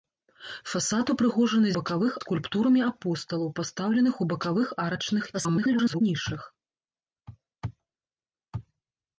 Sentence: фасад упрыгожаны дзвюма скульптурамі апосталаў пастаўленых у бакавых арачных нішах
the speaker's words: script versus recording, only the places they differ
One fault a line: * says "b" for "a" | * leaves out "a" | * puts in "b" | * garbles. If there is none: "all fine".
* says "бакавых" for "дзвюма"
* garbles